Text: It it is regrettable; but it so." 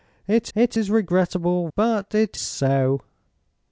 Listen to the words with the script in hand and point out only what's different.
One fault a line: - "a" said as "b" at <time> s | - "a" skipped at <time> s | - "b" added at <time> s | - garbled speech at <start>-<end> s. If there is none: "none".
none